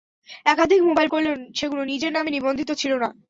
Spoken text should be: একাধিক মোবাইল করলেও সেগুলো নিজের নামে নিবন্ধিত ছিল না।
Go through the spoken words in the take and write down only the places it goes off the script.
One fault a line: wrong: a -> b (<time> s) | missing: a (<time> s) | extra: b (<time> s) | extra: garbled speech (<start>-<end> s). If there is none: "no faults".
no faults